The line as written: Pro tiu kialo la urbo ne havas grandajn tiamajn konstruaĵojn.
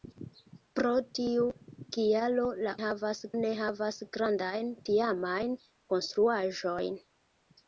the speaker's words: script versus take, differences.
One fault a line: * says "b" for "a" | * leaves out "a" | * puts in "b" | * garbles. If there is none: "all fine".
* says "havas" for "urbo"